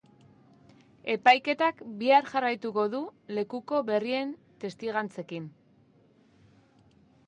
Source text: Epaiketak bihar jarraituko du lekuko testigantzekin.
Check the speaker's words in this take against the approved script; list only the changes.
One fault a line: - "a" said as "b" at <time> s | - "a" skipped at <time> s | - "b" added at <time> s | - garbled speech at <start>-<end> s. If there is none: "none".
- "berrien" added at 3.9 s